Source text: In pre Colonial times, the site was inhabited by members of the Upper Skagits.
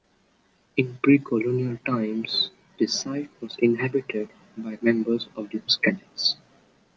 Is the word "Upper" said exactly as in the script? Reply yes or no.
no